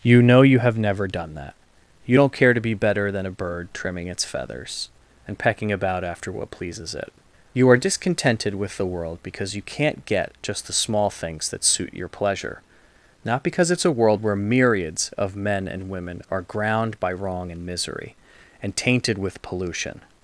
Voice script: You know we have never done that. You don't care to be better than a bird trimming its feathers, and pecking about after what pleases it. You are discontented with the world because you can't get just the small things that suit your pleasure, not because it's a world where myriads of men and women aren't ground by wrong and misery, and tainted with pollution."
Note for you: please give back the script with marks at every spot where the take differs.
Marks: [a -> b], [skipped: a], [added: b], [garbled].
You know [we -> you] have never done that. You don't care to be better than a bird trimming its feathers, and pecking about after what pleases it. You are discontented with the world because you can't get just the small things that suit your pleasure, not because it's a world where myriads of men and women [aren't -> are] ground by wrong and misery, and tainted with pollution."